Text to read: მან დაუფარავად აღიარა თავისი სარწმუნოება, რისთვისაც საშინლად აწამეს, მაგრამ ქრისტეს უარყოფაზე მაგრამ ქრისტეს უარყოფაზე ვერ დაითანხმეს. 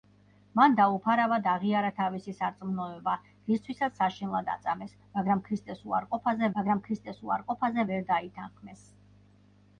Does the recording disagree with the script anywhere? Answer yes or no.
no